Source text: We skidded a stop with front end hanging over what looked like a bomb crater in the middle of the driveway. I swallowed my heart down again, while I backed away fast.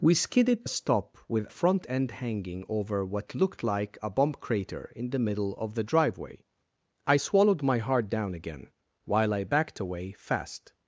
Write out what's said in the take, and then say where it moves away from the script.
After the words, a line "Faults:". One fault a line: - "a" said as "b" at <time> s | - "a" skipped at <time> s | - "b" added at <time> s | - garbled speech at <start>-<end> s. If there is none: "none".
We skidded a stop with front end hanging over what looked like a bomb crater in the middle of the driveway. I swallowed my heart down again, while I backed away fast.
Faults:
none